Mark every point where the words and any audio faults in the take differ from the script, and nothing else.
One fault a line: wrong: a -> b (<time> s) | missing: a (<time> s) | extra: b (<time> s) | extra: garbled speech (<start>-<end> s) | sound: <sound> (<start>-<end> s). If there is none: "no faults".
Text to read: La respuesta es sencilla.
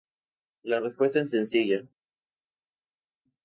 no faults